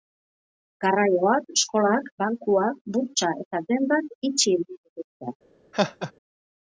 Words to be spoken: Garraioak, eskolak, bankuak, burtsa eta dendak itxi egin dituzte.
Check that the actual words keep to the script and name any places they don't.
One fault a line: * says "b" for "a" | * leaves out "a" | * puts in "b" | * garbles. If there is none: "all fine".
all fine